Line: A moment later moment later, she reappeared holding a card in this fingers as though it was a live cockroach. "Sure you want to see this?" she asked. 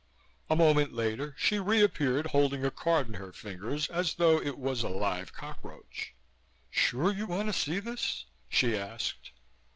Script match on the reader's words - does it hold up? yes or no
no